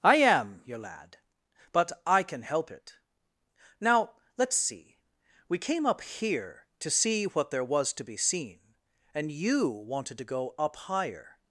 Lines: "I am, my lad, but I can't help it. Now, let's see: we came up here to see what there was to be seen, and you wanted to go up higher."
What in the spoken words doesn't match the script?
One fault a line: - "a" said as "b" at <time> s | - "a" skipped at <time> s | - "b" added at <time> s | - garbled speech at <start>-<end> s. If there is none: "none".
- "my" said as "your" at 0.7 s
- "can't" said as "can" at 2.2 s